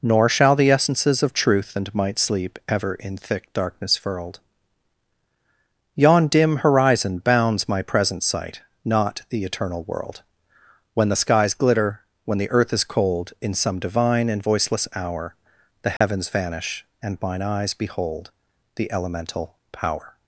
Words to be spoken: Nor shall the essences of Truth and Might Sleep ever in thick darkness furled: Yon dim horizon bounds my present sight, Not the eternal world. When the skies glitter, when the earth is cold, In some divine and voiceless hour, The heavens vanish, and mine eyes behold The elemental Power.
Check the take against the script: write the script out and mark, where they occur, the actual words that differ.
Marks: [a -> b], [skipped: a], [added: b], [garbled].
Nor shall the essences of Truth and Might Sleep ever in thick darkness furled: Yon dim horizon bounds my present sight, Not the eternal world. When the skies glitter, when the earth is cold, In some divine and voiceless hour, The heavens vanish, and mine eyes behold The elemental Power.